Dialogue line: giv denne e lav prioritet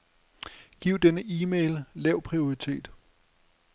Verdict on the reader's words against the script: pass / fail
fail